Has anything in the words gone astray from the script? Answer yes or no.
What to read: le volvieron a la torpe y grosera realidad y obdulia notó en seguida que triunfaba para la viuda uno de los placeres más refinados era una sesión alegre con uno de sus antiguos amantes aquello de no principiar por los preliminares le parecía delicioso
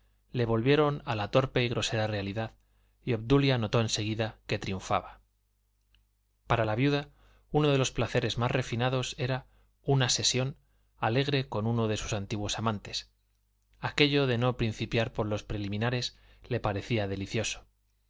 no